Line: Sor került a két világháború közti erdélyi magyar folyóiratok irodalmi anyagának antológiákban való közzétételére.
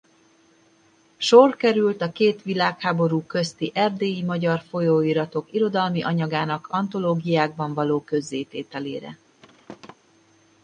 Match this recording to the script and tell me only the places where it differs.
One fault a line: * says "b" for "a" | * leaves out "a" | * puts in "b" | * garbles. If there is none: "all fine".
all fine